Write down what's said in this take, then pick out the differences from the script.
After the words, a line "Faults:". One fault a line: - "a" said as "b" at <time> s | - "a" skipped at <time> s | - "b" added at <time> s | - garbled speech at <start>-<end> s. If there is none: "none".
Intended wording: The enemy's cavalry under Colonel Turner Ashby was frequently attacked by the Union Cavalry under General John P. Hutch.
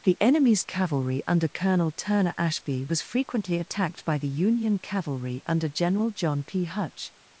The enemy's cavalry under Colonel Turner Ashby was frequently attacked by the Union Cavalry under General John P. Hutch.
Faults:
none